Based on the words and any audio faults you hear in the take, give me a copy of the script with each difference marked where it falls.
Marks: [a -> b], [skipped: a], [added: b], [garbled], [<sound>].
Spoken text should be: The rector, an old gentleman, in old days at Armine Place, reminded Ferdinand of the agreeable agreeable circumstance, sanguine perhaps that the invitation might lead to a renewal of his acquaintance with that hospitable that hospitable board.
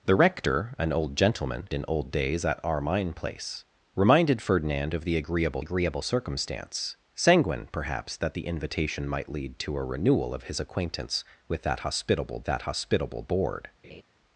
The rector, an old gentleman, in old days at Armine Place, reminded Ferdinand of the agreeable agreeable circumstance, sanguine perhaps that the invitation might lead to a renewal of his acquaintance with that hospitable that hospitable board. [laugh]